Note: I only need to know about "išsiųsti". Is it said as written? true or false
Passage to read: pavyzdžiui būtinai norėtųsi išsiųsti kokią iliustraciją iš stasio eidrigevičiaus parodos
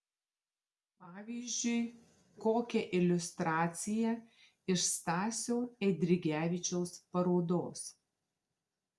false